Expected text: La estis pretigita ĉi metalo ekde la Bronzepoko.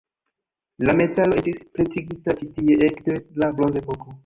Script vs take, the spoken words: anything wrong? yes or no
yes